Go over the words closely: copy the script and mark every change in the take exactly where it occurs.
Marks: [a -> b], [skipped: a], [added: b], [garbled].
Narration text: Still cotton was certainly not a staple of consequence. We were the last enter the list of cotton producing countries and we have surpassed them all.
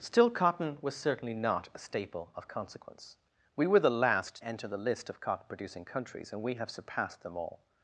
Still cotton was certainly not a staple of consequence. We were the last enter the list of cotton producing countries and we have surpassed them all.